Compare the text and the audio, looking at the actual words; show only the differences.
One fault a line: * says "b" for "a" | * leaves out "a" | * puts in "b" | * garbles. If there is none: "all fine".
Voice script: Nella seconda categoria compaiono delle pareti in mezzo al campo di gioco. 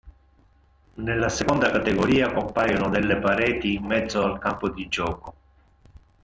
all fine